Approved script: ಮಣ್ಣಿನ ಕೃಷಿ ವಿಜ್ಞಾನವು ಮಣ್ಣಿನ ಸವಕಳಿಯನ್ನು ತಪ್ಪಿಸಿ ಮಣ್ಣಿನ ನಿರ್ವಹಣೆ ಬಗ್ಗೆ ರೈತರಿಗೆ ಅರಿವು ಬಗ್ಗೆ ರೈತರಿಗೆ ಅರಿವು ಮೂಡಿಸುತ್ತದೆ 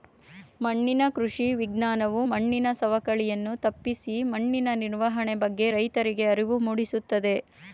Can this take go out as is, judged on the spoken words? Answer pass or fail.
fail